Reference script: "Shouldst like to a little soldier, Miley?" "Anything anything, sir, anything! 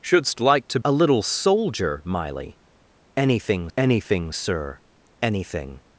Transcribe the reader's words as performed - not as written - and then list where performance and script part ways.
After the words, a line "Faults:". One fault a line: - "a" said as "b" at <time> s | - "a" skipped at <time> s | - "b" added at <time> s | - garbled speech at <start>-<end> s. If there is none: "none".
"Shouldst like to a little soldier, Miley?" "Anything anything, sir, anything!
Faults:
none